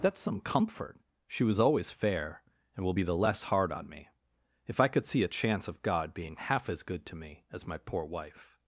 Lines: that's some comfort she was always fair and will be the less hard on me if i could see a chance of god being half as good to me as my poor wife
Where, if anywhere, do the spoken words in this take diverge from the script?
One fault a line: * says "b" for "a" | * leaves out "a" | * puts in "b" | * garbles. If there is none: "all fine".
all fine